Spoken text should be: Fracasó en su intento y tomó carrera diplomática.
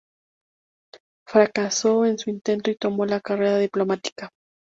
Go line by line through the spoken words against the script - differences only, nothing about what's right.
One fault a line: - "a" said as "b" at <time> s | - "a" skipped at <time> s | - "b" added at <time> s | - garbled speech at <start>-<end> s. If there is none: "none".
- "la" added at 3.0 s